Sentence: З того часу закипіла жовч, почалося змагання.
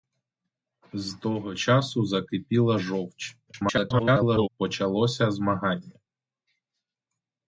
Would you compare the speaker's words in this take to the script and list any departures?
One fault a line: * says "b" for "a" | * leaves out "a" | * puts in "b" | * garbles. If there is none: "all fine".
* garbles